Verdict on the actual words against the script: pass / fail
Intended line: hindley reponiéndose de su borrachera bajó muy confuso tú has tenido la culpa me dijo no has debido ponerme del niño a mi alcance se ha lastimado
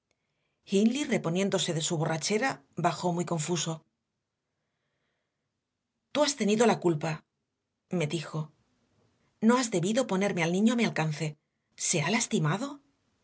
fail